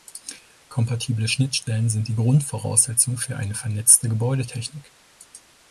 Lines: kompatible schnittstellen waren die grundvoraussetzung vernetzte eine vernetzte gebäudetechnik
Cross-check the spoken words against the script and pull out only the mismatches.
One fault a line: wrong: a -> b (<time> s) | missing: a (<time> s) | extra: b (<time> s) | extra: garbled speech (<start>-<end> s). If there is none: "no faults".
wrong: waren -> sind (1.9 s)
wrong: vernetzte -> für (3.2 s)